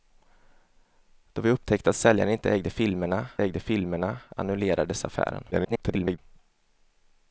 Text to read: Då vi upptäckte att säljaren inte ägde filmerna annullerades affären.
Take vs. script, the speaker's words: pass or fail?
fail